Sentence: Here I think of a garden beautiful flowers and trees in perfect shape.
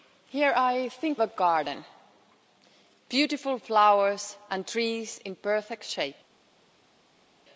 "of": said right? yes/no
no